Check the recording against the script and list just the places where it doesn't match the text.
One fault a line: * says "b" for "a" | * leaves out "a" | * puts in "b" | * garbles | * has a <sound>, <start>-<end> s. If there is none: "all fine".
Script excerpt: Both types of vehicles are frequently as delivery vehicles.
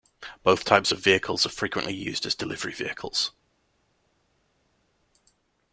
* puts in "used"